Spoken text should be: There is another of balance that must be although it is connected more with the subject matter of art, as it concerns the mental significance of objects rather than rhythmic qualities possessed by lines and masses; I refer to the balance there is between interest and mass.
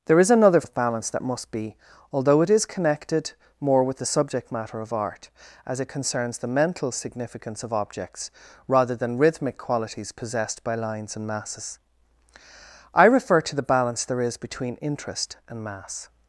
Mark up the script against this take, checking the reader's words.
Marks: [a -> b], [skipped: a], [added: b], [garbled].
There is another of balance that must be although it is connected more with the subject matter of art, as it concerns the mental significance of objects rather than rhythmic qualities possessed by lines and masses; I refer to the balance there is between interest and mass.